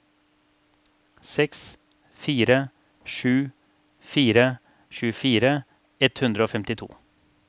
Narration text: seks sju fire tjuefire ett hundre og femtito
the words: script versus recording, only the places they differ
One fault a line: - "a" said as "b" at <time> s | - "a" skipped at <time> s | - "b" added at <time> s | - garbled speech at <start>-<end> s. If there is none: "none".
- "fire" added at 2.2 s